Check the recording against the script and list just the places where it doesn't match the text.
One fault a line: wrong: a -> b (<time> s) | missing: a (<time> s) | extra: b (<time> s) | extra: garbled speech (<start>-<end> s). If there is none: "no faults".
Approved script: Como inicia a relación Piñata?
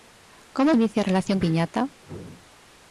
no faults